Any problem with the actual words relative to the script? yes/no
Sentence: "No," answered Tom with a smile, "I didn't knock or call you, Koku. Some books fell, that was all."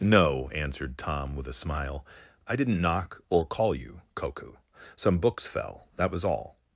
no